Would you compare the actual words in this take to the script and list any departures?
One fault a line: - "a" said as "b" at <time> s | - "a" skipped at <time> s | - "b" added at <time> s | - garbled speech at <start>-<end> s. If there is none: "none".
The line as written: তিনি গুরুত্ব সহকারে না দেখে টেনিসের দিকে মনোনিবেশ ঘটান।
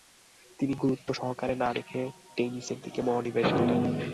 none